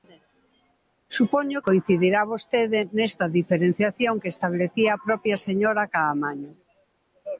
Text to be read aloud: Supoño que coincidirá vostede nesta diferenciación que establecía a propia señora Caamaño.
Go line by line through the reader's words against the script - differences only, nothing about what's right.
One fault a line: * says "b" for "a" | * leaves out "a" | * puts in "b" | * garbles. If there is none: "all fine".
* leaves out "que"